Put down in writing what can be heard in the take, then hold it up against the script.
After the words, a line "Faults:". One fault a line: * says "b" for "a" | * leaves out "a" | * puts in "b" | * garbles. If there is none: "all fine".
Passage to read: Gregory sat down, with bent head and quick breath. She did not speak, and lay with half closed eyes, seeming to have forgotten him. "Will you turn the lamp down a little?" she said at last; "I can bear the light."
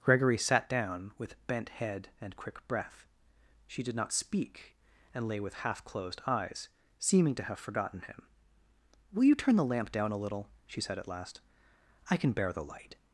Gregory sat down, with bent head and quick breath. She did not speak, and lay with half closed eyes, seeming to have forgotten him. "Will you turn the lamp down a little?" she said at last; "I can bear the light."
Faults:
all fine